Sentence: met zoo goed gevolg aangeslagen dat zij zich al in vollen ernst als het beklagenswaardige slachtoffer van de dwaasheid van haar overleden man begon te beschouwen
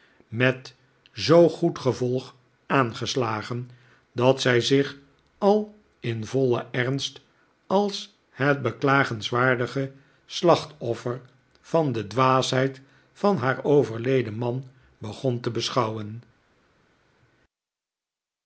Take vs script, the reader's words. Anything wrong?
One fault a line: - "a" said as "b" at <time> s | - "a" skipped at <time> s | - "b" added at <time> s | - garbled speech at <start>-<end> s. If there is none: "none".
none